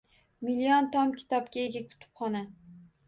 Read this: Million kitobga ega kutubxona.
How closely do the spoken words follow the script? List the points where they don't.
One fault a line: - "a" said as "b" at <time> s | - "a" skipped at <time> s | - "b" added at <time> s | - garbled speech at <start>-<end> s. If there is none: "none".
- "tom" added at 0.9 s